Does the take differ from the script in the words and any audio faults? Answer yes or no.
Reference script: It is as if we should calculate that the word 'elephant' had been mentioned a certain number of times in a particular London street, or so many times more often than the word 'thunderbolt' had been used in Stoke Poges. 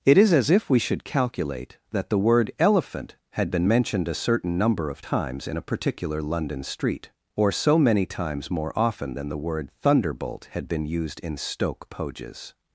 no